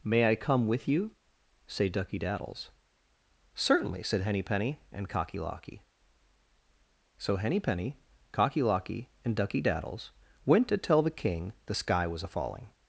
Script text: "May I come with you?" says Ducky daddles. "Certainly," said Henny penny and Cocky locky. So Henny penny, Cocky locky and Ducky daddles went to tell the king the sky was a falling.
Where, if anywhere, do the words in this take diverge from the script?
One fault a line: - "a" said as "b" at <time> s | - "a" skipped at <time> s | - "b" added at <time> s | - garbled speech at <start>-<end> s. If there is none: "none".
- "says" said as "say" at 1.7 s